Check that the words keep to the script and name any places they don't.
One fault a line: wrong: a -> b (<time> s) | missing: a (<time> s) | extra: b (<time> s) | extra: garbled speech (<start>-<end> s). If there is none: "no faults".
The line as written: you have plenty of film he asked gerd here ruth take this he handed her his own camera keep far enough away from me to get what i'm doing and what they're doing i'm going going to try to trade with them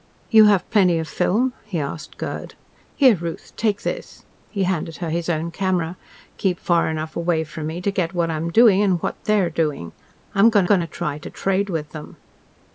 no faults